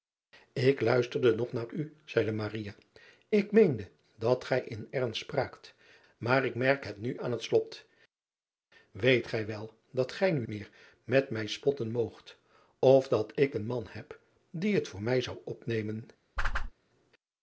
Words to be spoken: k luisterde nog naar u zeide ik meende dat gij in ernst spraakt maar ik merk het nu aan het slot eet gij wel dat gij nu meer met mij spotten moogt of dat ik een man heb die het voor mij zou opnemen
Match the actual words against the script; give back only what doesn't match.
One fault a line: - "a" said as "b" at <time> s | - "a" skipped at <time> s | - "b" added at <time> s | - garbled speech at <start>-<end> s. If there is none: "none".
none